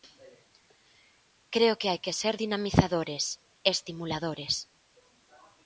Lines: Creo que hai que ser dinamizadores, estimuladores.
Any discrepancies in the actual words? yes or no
no